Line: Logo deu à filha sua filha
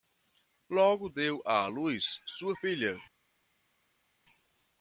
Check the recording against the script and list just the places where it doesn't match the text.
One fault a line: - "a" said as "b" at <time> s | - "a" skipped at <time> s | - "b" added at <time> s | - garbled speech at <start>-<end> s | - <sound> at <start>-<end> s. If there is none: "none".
- "filha" said as "luz" at 1.6 s